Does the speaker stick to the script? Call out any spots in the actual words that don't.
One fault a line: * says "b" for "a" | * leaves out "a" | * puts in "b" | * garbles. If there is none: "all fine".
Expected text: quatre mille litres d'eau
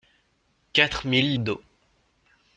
* leaves out "litres"